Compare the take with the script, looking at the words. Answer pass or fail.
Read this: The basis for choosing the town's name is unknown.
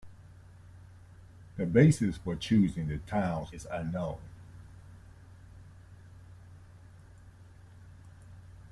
fail